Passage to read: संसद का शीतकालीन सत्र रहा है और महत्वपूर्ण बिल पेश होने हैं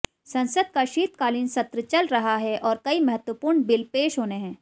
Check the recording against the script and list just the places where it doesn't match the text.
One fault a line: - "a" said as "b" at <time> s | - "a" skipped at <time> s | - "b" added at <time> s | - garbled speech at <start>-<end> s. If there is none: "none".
- "चल" added at 1.8 s
- "कई" added at 2.8 s